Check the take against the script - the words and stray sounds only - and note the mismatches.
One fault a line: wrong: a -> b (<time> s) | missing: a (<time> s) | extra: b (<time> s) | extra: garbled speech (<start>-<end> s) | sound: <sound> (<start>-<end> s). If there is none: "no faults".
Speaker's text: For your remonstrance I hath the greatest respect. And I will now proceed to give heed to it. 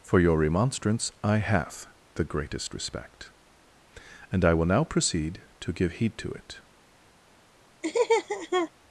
sound: laugh (7.8-8.7 s)